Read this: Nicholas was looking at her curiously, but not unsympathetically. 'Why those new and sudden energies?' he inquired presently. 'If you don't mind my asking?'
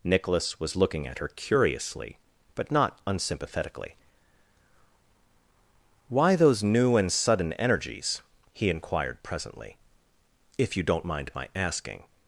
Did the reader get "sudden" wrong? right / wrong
right